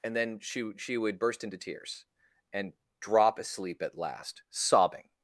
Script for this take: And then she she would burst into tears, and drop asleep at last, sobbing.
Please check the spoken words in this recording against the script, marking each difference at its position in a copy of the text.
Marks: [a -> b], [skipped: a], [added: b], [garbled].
And then she she would burst into tears, and drop asleep at last, sobbing.